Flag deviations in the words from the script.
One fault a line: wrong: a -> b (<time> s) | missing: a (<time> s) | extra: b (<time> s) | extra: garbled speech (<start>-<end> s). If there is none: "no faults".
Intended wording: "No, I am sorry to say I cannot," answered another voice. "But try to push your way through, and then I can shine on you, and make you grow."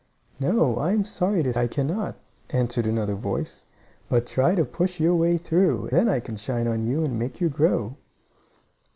missing: say (1.5 s)
missing: and (5.9 s)